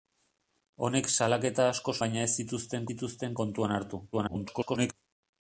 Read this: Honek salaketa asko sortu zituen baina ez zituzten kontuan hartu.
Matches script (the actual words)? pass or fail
fail